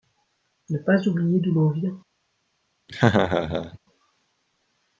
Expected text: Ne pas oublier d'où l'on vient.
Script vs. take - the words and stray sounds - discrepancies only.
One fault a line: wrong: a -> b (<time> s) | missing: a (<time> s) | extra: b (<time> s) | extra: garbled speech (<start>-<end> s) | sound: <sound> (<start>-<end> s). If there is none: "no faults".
sound: laugh (2.9-3.8 s)